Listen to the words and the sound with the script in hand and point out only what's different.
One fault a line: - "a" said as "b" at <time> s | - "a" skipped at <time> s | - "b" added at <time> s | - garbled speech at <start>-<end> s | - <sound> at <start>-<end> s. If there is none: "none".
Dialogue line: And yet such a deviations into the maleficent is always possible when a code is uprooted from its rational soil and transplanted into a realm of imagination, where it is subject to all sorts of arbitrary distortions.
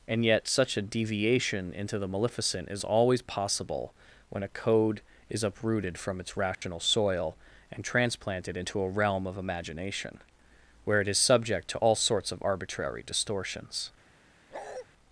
- "deviations" said as "deviation" at 0.8 s
- dropout at 6.5-6.6 s
- bark at 14.5-14.9 s